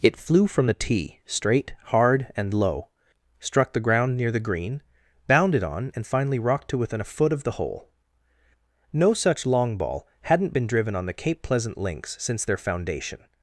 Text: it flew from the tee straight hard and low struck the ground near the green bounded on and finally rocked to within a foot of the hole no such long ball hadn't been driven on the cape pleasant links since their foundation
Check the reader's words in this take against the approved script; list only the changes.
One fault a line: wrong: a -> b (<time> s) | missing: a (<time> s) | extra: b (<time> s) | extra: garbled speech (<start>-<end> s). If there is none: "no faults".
no faults